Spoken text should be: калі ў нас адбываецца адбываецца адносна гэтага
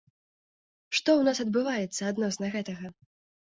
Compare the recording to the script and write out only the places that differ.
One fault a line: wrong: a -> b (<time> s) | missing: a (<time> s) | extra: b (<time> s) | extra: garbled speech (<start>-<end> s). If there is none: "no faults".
wrong: калі -> што (0.9 s)
missing: адбываецца (2.0 s)